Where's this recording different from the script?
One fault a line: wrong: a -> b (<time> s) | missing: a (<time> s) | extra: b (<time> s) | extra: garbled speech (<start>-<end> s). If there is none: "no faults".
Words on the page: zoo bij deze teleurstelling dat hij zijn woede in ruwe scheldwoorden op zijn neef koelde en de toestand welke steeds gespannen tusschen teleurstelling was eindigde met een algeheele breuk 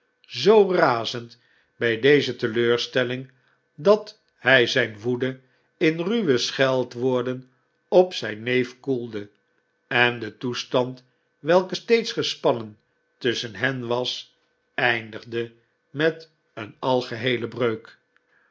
extra: razend (0.7 s)
wrong: teleurstelling -> hen (13.6 s)